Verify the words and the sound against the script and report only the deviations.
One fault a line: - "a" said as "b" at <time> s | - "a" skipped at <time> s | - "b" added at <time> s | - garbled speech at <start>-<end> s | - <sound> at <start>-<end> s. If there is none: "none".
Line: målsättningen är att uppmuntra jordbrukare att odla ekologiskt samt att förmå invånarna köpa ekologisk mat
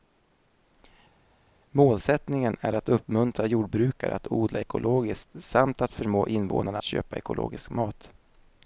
none